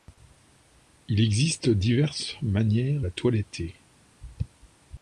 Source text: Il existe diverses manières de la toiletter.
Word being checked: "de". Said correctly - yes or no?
no